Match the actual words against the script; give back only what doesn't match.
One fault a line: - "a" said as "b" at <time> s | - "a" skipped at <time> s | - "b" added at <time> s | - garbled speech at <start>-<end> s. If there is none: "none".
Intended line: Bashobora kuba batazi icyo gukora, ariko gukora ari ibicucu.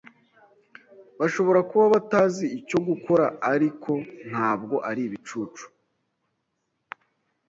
- "gukora" said as "ntabwo" at 4.3 s